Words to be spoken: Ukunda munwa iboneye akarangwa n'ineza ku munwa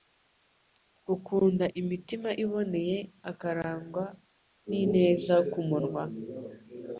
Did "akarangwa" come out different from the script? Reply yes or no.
no